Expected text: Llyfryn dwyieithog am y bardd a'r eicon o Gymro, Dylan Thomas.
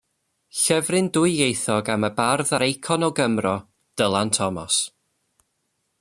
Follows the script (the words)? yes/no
yes